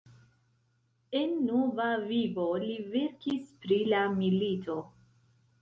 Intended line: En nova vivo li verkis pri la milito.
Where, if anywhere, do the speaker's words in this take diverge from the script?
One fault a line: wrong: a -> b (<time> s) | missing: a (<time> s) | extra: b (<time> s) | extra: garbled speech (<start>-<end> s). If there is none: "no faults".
no faults